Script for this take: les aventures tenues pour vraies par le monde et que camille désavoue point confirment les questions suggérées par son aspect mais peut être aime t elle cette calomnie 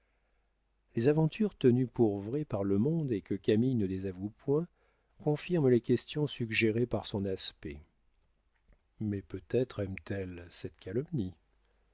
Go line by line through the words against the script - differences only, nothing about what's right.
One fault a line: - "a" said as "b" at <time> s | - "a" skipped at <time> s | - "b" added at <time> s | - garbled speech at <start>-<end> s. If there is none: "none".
- "ne" added at 3.8 s